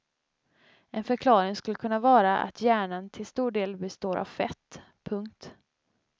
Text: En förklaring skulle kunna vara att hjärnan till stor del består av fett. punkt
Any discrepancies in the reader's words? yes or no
no